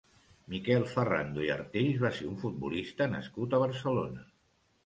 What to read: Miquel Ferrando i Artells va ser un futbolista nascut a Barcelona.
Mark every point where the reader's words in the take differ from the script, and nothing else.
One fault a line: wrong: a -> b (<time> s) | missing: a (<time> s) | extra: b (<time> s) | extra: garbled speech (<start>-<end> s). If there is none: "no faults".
no faults